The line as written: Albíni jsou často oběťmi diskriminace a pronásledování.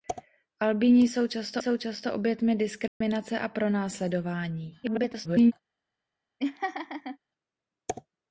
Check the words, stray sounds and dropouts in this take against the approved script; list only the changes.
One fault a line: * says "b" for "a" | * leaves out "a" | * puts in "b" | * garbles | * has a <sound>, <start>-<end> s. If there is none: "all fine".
* puts in "jsou často"
* has a dropout, 2.9-3.0 s
* garbles
* has a laugh, 6.4-7.2 s